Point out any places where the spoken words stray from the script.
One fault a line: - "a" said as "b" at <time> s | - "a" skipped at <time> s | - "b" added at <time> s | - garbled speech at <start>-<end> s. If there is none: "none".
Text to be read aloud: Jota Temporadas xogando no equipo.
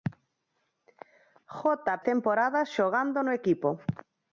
none